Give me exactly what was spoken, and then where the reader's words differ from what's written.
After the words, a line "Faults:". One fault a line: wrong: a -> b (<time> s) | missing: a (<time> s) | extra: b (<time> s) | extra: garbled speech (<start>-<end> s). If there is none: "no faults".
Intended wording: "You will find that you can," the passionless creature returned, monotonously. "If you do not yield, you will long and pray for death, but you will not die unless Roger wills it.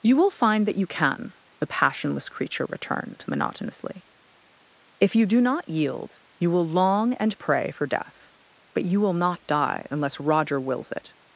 "You will find that you can," the passionless creature returned, monotonously. "If you do not yield, you will long and pray for death, but you will not die unless Roger wills it.
Faults:
no faults